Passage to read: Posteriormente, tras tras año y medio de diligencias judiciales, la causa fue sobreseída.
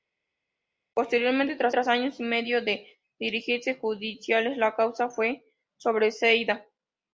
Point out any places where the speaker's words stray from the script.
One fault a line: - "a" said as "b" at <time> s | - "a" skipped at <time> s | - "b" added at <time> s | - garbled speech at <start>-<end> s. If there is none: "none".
none